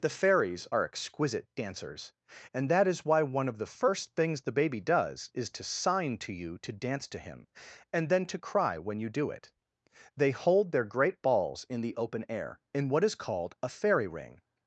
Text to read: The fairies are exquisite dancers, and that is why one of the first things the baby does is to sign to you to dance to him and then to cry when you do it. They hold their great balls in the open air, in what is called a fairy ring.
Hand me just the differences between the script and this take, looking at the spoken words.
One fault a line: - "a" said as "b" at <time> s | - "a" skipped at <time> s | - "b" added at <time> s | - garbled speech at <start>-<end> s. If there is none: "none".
none